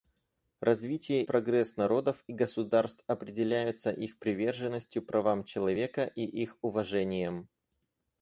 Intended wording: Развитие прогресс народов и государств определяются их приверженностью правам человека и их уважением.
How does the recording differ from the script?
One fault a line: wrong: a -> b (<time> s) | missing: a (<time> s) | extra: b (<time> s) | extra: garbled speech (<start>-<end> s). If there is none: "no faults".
no faults